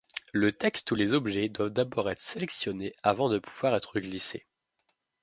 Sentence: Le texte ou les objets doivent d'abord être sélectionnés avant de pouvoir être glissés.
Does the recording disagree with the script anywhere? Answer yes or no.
no